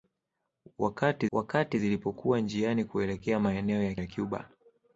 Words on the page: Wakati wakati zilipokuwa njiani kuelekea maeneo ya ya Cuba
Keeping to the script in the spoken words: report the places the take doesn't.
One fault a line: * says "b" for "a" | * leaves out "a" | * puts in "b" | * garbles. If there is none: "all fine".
all fine